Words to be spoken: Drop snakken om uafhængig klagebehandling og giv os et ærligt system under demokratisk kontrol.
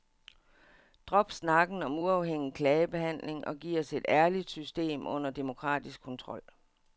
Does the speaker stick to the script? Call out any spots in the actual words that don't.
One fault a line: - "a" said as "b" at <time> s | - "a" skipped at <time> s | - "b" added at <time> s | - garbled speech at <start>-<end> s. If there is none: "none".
none